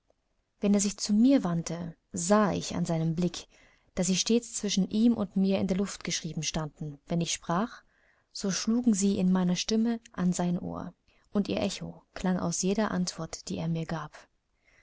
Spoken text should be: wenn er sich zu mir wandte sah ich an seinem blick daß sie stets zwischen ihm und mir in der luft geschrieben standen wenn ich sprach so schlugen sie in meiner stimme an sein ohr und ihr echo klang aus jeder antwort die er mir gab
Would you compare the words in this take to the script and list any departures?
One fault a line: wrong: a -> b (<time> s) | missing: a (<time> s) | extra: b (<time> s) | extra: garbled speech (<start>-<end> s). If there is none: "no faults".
no faults